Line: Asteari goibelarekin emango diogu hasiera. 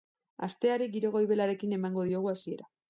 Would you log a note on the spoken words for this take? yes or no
yes